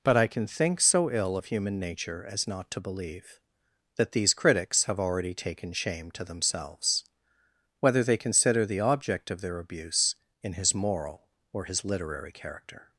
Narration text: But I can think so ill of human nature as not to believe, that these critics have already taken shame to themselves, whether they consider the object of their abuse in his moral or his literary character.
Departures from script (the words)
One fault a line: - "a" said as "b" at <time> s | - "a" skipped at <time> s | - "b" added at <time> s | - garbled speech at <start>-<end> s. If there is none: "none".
none